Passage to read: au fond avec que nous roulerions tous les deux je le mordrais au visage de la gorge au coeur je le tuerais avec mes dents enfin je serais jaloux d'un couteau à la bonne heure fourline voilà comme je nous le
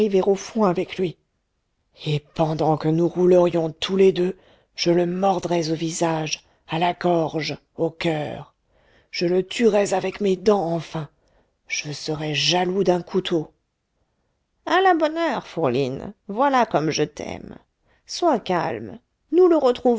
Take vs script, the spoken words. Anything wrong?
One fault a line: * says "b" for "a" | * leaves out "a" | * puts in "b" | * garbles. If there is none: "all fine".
* puts in "lui et pendant"
* says "à" for "de"
* puts in "t'aime sois calme"